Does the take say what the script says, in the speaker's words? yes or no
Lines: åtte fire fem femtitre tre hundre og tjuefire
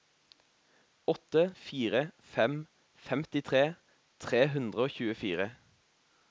yes